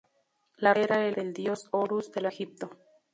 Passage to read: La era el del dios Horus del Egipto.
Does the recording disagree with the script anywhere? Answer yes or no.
no